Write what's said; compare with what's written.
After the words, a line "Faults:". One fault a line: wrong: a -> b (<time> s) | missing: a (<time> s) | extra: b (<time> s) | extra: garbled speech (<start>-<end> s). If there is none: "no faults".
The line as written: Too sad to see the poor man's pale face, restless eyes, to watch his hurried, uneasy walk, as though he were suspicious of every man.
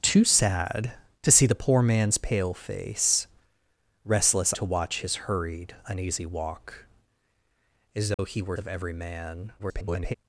Too sad to see the poor man's pale face, restless to watch his hurried, uneasy walk, as though he were of every man. [garbled]
Faults:
missing: eyes (4.5 s)
missing: suspicious (8.6 s)
extra: garbled speech (9.6-10.1 s)